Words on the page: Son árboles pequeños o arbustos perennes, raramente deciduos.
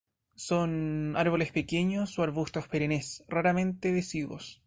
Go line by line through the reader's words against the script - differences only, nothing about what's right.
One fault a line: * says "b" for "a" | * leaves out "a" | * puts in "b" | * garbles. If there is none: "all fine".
all fine